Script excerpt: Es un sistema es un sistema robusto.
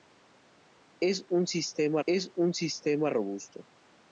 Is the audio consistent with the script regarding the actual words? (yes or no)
yes